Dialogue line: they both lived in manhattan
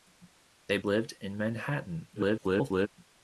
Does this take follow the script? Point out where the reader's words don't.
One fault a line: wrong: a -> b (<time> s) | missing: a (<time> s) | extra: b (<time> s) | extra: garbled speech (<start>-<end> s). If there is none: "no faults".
missing: both (0.8 s)
extra: garbled speech (2.1-2.9 s)